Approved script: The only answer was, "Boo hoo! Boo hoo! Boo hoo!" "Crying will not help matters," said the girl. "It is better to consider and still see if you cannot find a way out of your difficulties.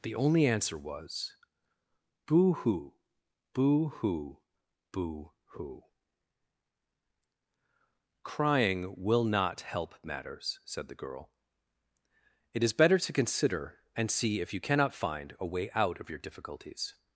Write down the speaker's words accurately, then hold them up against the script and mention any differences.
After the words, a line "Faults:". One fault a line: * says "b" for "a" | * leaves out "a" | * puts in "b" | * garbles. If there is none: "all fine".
The only answer was, "Boo hoo! Boo hoo! Boo hoo!" "Crying will not help matters," said the girl. "It is better to consider and see if you cannot find a way out of your difficulties.
Faults:
* leaves out "still"